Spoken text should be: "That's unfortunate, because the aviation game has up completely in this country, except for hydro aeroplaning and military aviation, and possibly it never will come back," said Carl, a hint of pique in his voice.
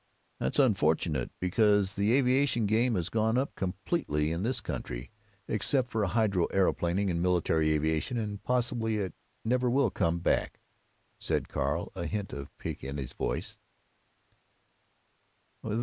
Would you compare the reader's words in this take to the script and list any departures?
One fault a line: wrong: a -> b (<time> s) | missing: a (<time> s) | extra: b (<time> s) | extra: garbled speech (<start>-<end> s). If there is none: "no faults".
extra: gone (3.1 s)